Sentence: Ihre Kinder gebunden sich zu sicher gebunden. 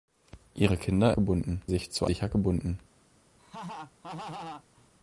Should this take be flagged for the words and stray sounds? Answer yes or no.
yes